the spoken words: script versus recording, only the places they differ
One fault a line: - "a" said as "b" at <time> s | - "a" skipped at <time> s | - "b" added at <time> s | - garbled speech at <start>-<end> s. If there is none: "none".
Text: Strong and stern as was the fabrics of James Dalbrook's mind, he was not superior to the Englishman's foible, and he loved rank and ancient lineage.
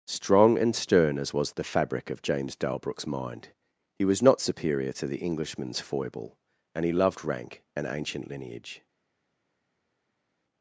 - "fabrics" said as "fabric" at 1.6 s